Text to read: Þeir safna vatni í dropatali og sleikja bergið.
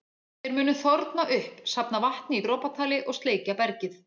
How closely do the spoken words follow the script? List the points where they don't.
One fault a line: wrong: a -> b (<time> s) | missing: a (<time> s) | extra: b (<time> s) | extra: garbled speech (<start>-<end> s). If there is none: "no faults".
extra: munu þorna upp (0.6 s)